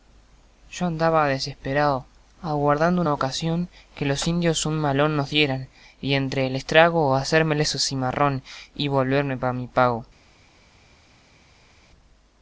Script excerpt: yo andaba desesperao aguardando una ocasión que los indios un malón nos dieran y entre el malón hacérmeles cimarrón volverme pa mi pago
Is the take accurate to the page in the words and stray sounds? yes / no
no